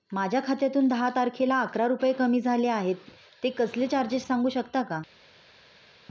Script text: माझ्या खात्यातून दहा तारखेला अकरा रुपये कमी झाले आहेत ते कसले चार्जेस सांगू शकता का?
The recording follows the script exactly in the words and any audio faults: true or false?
true